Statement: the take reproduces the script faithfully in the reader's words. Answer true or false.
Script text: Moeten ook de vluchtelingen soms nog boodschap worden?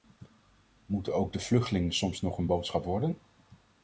false